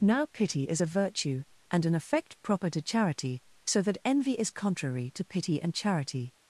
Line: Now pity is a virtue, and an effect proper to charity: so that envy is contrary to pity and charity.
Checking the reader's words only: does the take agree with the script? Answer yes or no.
yes